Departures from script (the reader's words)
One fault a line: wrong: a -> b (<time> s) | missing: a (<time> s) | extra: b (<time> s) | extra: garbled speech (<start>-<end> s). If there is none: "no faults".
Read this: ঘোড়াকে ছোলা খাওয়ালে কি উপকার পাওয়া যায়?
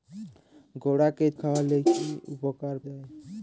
missing: ছোলা (1.2 s)
missing: পাওয়া (2.7 s)